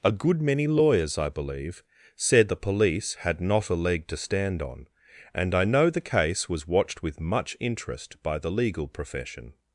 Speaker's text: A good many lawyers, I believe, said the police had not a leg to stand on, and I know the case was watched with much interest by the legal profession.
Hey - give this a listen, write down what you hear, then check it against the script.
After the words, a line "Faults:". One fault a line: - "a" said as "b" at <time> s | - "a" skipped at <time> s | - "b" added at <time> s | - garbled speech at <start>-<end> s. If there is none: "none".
A good many lawyers, I believe, said the police had not a leg to stand on, and I know the case was watched with much interest by the legal profession.
Faults:
none